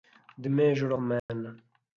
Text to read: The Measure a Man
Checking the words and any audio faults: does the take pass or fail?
fail